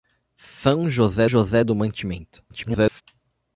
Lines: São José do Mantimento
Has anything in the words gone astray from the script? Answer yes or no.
yes